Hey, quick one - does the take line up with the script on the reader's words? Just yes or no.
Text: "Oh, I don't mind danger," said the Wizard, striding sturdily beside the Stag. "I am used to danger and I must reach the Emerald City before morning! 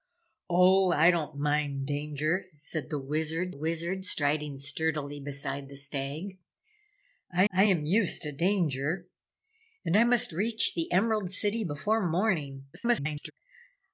no